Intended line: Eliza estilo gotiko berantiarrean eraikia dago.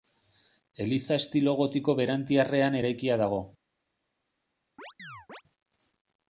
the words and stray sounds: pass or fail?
fail